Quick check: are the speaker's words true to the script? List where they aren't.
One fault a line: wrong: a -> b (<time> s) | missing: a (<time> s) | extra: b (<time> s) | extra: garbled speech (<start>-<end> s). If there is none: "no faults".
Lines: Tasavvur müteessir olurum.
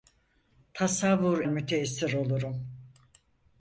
no faults